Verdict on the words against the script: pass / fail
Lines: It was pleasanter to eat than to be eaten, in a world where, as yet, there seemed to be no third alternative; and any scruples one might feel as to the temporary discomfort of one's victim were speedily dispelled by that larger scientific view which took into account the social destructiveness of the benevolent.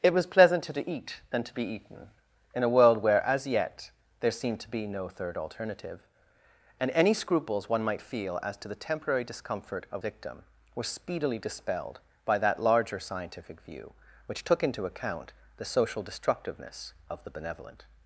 fail